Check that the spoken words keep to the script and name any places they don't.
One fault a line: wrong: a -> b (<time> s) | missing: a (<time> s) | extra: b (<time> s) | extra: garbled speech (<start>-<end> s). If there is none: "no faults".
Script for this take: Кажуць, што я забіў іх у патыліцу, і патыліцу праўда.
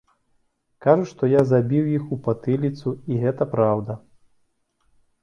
wrong: патыліцу -> гэта (3.2 s)